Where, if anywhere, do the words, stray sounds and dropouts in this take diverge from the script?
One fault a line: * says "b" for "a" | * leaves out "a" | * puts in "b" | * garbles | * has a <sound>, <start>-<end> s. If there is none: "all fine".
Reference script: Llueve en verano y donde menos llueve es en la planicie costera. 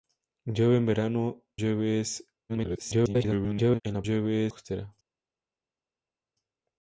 * leaves out "y donde menos"
* garbles
* says "llueve" for "planicie"